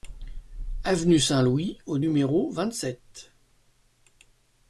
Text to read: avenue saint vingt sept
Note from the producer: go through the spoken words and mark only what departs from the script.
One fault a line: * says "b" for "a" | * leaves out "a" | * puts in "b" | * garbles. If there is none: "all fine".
* puts in "louis au numéro"